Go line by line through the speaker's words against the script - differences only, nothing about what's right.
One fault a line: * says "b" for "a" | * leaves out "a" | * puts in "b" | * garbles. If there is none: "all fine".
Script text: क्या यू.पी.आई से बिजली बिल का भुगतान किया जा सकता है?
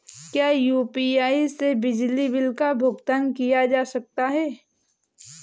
all fine